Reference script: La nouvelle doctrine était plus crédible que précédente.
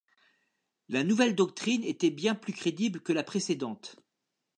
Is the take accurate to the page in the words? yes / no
no